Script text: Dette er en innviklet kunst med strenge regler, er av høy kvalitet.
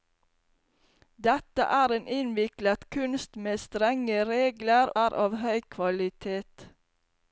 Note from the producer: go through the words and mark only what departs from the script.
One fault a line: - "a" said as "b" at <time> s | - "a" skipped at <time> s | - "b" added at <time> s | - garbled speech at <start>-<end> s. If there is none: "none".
none